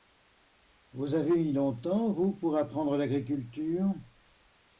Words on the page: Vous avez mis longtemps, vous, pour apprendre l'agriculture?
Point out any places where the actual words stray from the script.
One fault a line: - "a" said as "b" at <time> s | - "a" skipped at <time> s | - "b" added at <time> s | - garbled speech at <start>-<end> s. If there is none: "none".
none